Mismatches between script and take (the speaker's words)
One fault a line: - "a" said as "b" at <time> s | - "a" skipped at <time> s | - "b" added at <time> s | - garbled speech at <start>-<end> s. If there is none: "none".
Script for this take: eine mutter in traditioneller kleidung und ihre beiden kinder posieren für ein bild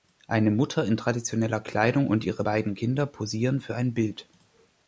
none